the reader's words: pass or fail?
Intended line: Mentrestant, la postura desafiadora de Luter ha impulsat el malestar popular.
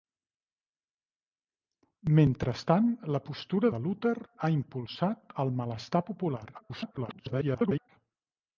fail